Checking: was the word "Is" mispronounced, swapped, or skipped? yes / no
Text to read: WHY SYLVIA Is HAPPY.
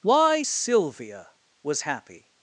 yes